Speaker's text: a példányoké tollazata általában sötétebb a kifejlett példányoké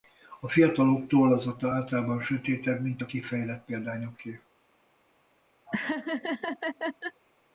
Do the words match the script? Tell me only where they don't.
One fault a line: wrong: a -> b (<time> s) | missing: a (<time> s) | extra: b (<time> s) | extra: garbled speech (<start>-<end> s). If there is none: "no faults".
wrong: példányoké -> fiatalok (0.5 s)
extra: mint (2.8 s)